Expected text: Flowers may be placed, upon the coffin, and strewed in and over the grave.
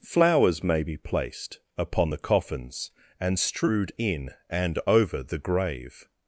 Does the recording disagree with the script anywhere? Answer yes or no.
yes